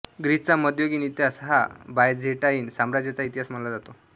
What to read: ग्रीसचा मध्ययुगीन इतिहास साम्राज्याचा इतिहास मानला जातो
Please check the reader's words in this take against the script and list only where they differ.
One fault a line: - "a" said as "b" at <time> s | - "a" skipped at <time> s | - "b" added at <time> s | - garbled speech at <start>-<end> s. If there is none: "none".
- "हा बायझेंटाईन" added at 1.4 s